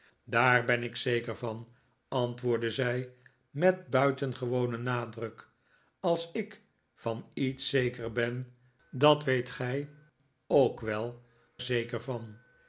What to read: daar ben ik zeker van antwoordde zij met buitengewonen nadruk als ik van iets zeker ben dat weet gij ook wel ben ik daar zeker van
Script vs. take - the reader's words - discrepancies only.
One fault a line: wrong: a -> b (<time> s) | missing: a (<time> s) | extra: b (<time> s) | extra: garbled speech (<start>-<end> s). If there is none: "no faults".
missing: ben ik daar (11.2 s)